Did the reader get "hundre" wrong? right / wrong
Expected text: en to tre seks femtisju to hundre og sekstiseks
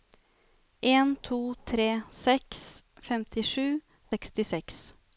wrong